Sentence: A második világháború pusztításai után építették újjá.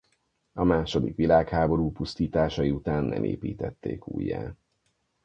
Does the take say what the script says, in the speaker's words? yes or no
no